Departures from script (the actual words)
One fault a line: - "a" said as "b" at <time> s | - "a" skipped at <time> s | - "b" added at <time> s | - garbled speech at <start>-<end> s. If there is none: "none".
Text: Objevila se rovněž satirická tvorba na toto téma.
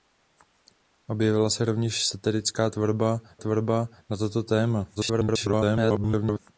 - "tvorba" added at 3.4 s
- garbled speech at 4.9-6.4 s